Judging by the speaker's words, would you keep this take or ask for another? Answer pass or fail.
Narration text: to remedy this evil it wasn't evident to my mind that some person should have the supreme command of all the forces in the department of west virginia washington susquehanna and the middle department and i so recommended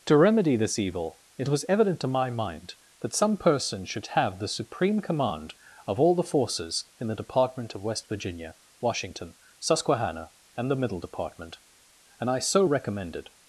fail